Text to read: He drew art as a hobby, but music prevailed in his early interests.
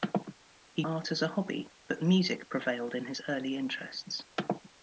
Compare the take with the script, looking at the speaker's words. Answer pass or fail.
fail